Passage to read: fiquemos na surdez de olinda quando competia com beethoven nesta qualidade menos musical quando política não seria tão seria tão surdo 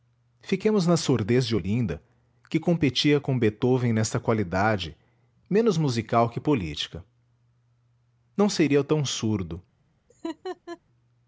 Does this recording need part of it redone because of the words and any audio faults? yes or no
yes